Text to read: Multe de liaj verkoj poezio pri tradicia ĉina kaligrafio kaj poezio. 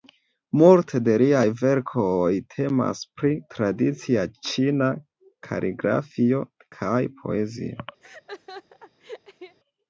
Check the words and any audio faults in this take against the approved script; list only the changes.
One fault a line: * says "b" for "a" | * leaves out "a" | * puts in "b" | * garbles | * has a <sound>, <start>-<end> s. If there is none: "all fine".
* says "temas" for "poezio"
* has a laugh, 8.0-9.6 s